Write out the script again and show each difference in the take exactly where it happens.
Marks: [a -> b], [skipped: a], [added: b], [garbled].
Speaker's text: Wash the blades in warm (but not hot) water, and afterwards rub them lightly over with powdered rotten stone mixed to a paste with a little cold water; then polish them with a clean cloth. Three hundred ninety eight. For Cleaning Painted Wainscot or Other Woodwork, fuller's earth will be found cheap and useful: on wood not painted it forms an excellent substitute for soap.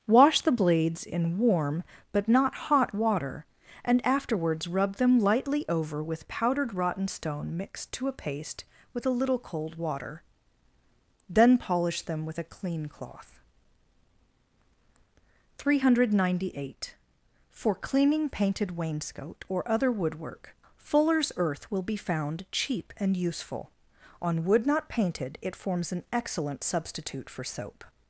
Wash the blades in warm (but not hot) water, and afterwards rub them lightly over with powdered rotten stone mixed to a paste with a little cold water; then polish them with a clean cloth. Three hundred ninety eight. For Cleaning Painted Wainscot or Other Woodwork, fuller's earth will be found cheap and useful: on wood not painted it forms an excellent substitute for soap.